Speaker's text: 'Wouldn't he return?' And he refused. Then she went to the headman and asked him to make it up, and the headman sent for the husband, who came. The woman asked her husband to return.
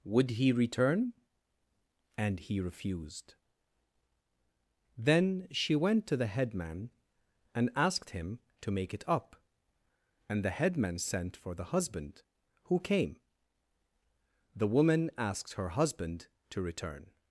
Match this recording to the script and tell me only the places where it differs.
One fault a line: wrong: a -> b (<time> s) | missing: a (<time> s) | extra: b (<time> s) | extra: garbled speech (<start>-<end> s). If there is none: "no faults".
wrong: Wouldn't -> Would (0.0 s)